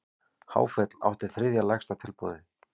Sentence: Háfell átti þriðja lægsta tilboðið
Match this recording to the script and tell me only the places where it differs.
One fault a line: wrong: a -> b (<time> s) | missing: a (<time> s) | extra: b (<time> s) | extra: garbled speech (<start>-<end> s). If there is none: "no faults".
no faults